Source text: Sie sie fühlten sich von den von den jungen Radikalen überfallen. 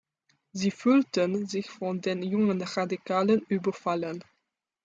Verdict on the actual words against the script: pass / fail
fail